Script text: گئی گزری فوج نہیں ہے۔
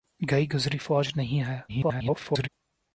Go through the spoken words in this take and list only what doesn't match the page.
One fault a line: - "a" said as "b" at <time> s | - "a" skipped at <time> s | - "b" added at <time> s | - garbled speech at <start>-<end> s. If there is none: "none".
- garbled speech at 1.7-2.5 s